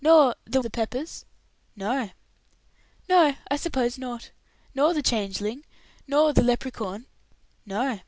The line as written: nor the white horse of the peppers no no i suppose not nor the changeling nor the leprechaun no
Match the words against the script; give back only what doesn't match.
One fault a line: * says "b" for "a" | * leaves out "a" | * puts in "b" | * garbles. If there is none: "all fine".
* leaves out "white horse of"